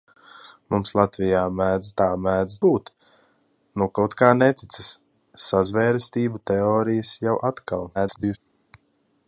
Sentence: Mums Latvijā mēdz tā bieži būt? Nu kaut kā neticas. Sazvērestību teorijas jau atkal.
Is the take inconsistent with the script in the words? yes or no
yes